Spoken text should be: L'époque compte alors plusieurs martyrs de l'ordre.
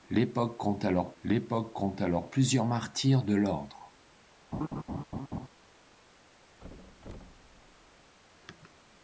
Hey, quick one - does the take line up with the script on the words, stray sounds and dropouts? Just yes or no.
no